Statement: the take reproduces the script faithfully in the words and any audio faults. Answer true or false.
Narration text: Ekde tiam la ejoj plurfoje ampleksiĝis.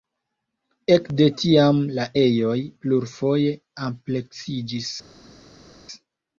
true